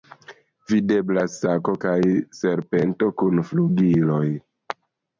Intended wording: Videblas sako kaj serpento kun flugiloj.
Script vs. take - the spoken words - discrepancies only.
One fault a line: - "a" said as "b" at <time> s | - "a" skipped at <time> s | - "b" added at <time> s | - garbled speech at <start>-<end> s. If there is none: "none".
none